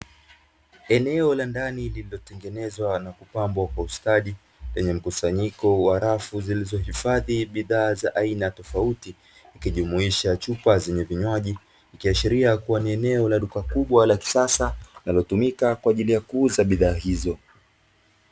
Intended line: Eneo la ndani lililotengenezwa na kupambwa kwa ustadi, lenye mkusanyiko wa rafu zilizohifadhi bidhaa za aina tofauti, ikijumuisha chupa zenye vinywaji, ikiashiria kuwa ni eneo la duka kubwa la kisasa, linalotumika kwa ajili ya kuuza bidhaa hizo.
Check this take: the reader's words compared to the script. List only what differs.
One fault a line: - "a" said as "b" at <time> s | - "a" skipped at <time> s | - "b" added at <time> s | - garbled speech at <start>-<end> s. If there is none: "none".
none